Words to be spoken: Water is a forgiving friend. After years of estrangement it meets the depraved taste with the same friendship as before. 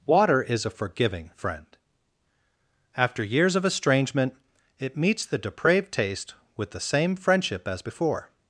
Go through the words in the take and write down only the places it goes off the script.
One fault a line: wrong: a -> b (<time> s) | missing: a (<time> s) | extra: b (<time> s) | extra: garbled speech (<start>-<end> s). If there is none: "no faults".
no faults